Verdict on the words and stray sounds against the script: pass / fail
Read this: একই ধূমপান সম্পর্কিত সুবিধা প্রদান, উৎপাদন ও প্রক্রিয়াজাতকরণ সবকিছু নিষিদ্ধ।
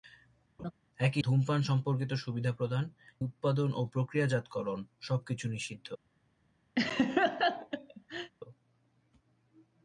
fail